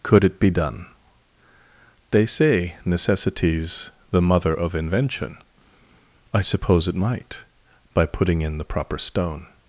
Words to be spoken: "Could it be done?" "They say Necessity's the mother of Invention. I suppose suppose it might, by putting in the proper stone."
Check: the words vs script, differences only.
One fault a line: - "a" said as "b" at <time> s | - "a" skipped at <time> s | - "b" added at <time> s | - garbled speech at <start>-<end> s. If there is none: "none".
- "suppose" skipped at 6.9 s